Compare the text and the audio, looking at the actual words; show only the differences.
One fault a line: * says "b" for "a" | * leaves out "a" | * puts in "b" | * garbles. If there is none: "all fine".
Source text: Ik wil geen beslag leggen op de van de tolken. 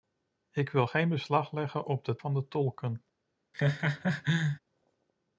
all fine